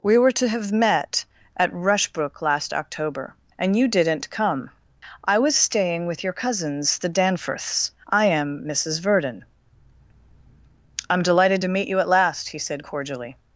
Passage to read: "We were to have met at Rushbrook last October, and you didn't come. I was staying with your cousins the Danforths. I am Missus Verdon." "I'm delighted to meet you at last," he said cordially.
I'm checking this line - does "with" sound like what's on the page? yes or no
yes